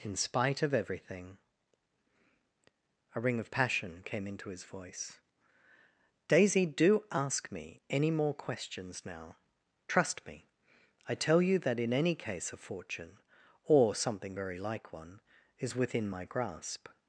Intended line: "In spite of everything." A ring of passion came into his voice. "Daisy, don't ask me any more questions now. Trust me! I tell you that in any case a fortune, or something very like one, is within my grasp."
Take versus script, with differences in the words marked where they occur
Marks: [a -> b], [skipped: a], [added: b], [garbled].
"In spite of everything." A ring of passion came into his voice. "Daisy, [don't -> do] ask me any more questions now. Trust me! I tell you that in any case a fortune, or something very like one, is within my grasp."